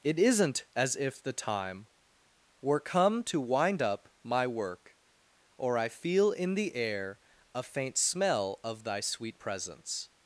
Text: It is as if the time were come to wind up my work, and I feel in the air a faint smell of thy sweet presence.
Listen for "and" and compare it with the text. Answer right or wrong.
wrong